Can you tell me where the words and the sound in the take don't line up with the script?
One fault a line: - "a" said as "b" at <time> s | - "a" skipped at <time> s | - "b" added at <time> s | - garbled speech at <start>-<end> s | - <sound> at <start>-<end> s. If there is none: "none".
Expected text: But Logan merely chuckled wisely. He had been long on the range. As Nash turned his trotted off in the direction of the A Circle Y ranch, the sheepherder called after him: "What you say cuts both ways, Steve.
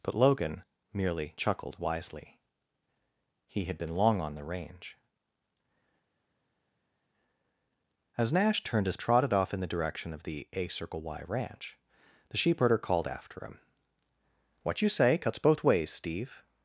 none